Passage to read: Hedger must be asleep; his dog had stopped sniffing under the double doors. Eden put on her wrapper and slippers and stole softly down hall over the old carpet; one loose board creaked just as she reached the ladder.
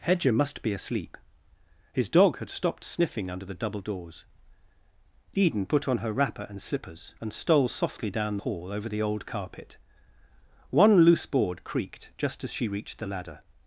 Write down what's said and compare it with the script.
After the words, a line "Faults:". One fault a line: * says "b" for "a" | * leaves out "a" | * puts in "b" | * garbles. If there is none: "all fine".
Hedger must be asleep; his dog had stopped sniffing under the double doors. Eden put on her wrapper and slippers and stole softly down hall over the old carpet; one loose board creaked just as she reached the ladder.
Faults:
all fine